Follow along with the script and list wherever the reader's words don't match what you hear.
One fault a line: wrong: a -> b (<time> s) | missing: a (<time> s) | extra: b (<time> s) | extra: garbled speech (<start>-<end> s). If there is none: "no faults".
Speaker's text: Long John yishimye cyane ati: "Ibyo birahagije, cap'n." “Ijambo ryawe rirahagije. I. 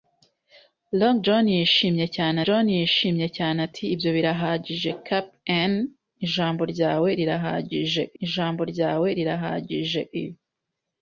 extra: John yishimye cyane (2.4 s)
extra: ijambo ryawe rirahagije (8.2 s)